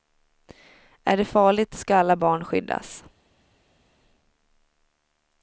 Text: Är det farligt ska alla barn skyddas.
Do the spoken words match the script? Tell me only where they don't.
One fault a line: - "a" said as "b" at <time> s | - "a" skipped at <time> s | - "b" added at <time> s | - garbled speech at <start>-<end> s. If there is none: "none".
none